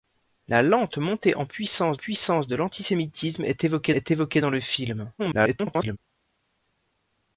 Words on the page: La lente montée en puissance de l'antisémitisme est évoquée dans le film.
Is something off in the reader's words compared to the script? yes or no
yes